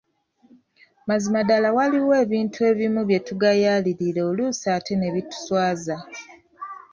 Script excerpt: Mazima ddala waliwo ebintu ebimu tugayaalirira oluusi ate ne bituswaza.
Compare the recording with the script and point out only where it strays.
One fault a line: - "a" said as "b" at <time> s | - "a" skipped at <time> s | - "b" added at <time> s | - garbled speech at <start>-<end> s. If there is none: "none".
- "bye" added at 3.1 s